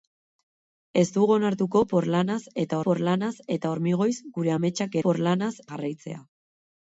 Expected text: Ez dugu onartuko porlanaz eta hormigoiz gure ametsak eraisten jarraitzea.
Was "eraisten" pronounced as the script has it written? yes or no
no